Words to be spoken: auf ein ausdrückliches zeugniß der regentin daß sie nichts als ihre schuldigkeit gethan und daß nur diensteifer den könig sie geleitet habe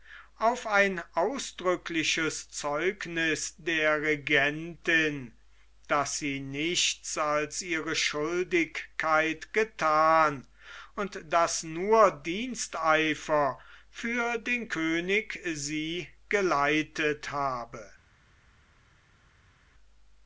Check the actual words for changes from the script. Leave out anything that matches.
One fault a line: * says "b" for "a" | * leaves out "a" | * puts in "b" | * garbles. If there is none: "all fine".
* puts in "für"